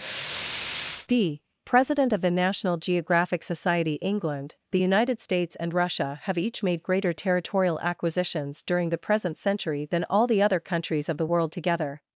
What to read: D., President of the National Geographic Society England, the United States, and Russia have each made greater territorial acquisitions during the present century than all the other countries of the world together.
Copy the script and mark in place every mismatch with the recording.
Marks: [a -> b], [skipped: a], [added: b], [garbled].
D., President of the National Geographic Society England, the United States, and Russia have each made greater territorial acquisitions during the present century than all the other countries of the world together.